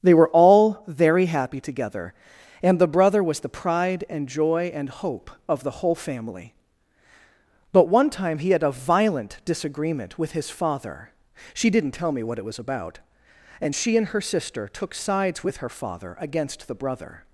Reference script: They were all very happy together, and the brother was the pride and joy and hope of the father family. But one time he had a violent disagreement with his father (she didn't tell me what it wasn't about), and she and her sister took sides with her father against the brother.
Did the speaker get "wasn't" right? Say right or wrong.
wrong